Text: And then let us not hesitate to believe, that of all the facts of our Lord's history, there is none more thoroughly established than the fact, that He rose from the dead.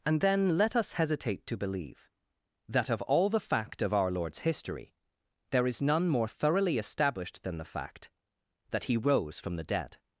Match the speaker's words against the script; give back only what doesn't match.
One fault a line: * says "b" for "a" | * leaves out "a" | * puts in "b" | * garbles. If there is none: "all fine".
* leaves out "not"
* says "fact" for "facts"